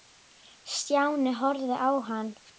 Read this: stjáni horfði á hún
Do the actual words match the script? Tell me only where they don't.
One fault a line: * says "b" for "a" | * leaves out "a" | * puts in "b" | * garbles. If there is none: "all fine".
* says "hann" for "hún"